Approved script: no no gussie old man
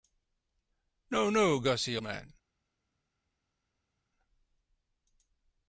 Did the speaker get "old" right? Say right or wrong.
wrong